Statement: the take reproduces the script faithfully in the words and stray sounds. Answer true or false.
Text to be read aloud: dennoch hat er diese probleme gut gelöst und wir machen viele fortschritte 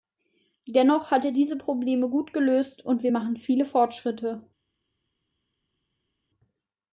true